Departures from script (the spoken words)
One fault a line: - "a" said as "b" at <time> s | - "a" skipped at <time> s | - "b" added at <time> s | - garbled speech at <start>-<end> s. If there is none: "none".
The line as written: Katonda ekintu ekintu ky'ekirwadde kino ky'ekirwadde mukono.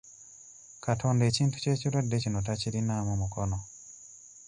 - "ekintu" skipped at 1.6 s
- "ky'ekirwadde" said as "takirinaamu" at 2.5 s